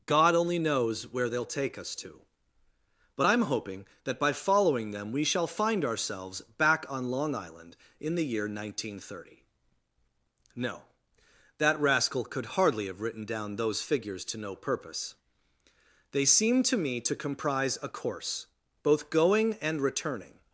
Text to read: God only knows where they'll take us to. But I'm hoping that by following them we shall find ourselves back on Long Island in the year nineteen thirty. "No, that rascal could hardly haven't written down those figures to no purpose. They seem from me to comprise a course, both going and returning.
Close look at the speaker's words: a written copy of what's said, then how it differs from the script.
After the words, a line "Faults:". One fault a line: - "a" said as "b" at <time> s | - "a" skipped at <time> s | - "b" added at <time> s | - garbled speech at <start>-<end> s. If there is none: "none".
God only knows where they'll take us to. But I'm hoping that by following them we shall find ourselves back on Long Island in the year nineteen thirty. "No, that rascal could hardly have written down those figures to no purpose. They seem to me to comprise a course, both going and returning.
Faults:
- "haven't" said as "have" at 12.9 s
- "from" said as "to" at 16.6 s